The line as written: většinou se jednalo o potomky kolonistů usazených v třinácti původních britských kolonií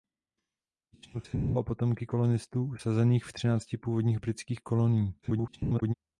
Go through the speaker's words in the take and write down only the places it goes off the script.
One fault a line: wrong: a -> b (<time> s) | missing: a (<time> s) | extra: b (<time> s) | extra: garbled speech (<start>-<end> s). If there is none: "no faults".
extra: garbled speech (5.2-5.9 s)